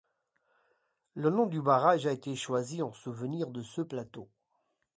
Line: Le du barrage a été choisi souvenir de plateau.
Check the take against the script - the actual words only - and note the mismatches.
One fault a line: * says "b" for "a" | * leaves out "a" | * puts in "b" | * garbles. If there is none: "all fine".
* puts in "nom"
* puts in "en"
* puts in "ce"